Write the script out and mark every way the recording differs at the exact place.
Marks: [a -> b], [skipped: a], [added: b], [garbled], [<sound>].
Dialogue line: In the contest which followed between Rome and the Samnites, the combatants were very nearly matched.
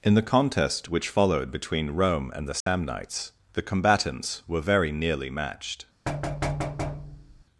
In the contest which followed between Rome and the Samnites, [dropout] the combatants were very nearly matched. [thud]